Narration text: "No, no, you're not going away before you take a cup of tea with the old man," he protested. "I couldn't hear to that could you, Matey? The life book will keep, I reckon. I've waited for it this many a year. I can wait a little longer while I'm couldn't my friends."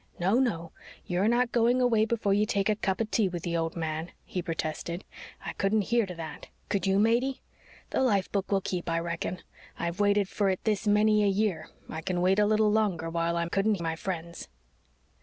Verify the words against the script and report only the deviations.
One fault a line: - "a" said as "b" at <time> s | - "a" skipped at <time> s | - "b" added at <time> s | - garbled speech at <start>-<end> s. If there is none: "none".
none